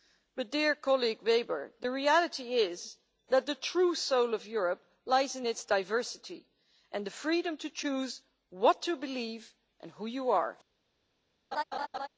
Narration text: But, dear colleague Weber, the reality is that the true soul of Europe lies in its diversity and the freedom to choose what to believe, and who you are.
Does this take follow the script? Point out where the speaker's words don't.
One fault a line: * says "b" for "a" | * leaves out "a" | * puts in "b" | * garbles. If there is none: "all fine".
all fine